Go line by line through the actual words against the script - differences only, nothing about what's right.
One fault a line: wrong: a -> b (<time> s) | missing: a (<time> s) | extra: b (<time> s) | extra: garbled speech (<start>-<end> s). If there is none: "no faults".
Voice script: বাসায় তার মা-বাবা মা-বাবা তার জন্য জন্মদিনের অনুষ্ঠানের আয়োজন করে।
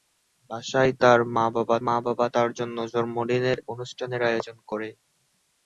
no faults